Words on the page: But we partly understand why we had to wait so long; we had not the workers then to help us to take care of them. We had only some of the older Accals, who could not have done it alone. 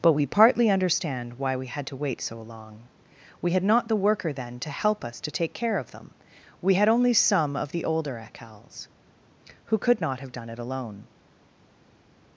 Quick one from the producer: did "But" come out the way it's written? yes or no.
yes